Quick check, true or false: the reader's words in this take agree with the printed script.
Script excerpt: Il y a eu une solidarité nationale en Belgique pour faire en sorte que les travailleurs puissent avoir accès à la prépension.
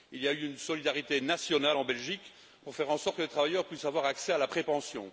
true